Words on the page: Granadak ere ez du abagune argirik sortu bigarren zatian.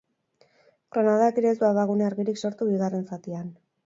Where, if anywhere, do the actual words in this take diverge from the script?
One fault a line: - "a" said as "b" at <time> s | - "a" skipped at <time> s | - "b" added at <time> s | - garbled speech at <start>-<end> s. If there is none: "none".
none